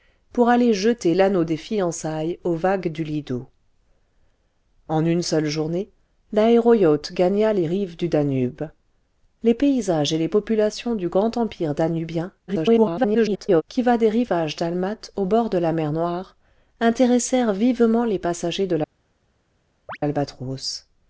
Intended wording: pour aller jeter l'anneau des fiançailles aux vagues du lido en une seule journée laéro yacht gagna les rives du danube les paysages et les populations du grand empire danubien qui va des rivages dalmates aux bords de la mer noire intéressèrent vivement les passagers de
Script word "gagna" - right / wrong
right